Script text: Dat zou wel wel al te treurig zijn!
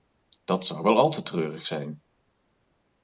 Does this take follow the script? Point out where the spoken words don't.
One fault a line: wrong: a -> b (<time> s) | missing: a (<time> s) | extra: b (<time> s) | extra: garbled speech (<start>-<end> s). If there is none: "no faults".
missing: wel (1.0 s)